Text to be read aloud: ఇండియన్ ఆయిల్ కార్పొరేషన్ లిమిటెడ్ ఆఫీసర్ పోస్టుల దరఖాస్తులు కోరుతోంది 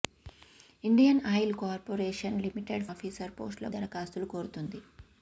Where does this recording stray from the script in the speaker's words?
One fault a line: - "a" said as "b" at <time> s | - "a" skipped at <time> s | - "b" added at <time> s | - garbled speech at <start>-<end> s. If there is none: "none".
none